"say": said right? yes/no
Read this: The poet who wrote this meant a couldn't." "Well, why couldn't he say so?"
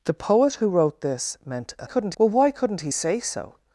yes